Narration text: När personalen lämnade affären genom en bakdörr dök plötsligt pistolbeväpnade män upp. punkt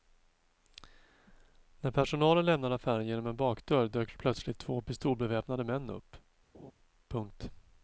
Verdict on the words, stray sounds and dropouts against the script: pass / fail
fail